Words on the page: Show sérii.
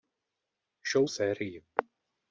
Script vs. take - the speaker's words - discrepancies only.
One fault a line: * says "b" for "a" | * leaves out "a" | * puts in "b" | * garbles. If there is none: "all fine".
all fine